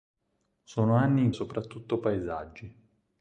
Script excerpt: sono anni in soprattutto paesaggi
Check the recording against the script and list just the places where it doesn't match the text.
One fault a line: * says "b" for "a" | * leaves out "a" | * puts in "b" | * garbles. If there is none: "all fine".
all fine